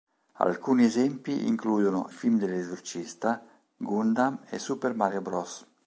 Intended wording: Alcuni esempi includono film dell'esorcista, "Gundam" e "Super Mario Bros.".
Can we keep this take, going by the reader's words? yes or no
yes